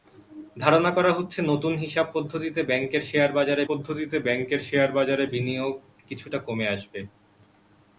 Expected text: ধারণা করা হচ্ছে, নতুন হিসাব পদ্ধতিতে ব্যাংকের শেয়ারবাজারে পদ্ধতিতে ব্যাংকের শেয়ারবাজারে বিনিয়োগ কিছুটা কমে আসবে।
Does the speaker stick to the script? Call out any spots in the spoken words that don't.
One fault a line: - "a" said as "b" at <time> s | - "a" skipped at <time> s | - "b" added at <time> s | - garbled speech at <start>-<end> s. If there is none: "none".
none